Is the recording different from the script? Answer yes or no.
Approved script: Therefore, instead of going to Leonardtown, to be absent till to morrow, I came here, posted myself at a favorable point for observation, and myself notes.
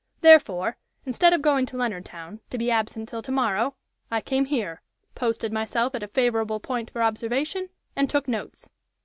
yes